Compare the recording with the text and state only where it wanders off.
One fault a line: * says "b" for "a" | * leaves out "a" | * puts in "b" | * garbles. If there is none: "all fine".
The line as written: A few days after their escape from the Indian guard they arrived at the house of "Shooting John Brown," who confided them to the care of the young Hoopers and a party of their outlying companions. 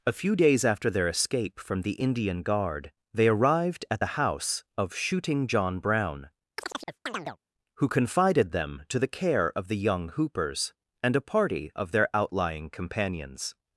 all fine